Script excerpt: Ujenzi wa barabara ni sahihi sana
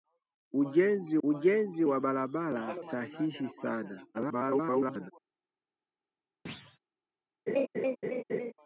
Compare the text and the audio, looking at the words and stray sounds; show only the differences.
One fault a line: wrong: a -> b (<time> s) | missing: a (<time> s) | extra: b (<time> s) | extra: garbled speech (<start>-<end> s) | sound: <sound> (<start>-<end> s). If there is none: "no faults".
extra: ujenzi (1.2 s)
missing: ni (2.8 s)
extra: garbled speech (4.1-5.1 s)
sound: thud (6.5-6.8 s)
sound: laugh (7.5-8.5 s)